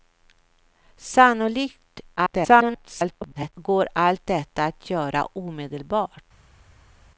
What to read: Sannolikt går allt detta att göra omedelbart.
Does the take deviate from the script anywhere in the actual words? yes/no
yes